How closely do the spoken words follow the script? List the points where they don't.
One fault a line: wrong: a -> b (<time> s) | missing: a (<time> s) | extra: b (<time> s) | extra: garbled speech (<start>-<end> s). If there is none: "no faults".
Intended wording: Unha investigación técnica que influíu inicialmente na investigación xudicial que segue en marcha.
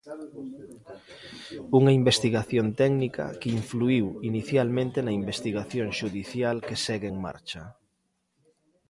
no faults